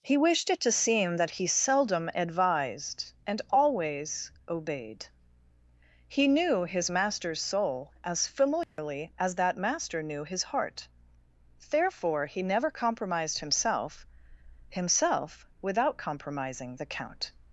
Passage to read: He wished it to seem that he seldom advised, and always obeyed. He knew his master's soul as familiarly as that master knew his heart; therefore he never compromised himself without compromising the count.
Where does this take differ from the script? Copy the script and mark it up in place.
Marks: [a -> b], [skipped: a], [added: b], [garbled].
He wished it to seem that he seldom advised, and always obeyed. He knew his master's soul as familiarly as that master knew his heart; therefore he never compromised himself [added: himself] without compromising the count.